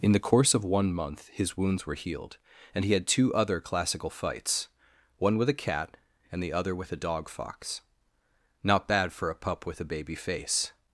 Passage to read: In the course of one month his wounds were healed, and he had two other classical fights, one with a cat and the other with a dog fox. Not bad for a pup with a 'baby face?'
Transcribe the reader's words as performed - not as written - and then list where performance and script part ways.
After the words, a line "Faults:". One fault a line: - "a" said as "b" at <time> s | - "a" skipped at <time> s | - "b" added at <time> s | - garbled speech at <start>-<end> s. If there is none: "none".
In the course of one month his wounds were healed, and he had two other classical fights, one with a cat and the other with a dog fox. Not bad for a pup with a 'baby face?'
Faults:
none